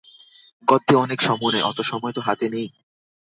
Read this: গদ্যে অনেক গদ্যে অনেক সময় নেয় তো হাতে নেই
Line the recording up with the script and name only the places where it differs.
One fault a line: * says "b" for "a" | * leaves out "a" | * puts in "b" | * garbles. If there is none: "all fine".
* says "সময় নেয় অত" for "গদ্যে অনেক"
* leaves out "নেয়"